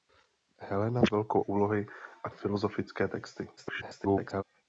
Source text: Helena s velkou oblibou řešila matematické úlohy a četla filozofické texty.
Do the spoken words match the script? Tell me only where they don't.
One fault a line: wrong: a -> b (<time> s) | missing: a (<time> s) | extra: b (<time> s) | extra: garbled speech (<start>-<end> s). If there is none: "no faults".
missing: oblibou řešila matematické (1.4 s)
missing: četla (2.3 s)
extra: garbled speech (3.6-4.4 s)